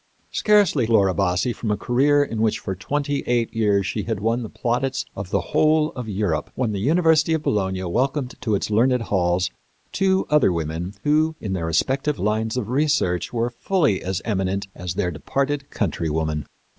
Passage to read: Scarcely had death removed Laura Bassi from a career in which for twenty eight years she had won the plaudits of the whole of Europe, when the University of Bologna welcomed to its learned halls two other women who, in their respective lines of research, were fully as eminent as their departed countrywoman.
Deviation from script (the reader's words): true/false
true